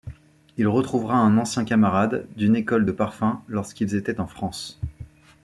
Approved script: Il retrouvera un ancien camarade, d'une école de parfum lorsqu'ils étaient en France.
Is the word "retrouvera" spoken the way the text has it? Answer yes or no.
yes